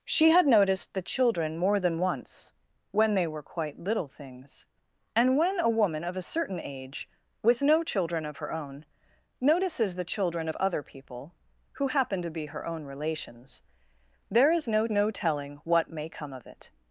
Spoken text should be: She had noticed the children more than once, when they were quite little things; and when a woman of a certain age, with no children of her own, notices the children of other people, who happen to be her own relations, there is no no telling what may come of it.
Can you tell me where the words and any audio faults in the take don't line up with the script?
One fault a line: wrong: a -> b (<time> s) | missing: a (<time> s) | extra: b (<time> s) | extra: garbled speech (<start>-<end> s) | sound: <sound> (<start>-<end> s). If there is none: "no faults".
no faults